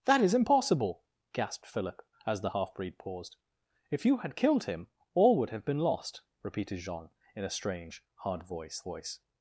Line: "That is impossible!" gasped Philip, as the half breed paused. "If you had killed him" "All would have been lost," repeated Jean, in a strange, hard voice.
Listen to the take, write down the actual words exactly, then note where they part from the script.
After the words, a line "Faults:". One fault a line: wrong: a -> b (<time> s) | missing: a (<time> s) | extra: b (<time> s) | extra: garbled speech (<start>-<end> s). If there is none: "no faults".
"That is impossible!" gasped Philip, as the half breed paused. "If you had killed him" "All would have been lost," repeated Jean, in a strange, hard voice voice.
Faults:
extra: voice (8.8 s)